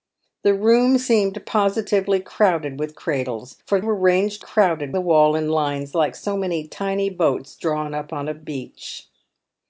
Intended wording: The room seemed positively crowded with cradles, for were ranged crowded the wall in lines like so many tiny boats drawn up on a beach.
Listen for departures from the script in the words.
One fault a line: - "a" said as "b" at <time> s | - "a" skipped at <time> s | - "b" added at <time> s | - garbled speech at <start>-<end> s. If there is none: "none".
none